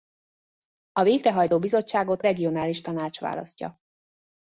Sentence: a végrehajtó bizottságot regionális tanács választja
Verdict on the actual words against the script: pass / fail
pass